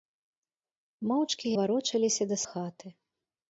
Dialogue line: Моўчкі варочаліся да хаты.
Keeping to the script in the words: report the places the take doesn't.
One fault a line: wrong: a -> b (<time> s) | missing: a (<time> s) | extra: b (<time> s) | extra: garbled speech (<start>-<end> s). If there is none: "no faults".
no faults